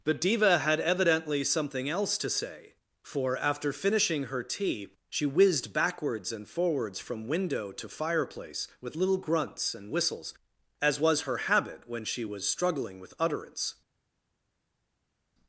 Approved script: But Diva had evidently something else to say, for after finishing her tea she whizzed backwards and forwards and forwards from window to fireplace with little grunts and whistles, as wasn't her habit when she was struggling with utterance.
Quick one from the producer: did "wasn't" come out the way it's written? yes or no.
no